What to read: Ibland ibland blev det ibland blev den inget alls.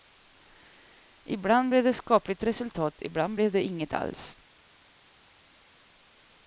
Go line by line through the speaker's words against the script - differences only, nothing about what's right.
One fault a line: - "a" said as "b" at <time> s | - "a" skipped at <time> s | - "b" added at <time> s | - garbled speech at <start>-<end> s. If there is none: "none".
- "ibland" skipped at 1.7 s
- "skapligt resultat" added at 2.0 s
- "den" said as "det" at 3.5 s